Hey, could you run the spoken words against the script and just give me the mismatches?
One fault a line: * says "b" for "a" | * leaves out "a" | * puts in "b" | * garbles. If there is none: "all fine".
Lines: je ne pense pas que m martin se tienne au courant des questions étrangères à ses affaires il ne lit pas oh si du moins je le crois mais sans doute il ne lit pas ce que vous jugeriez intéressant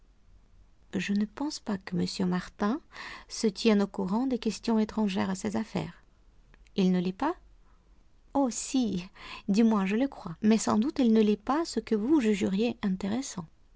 all fine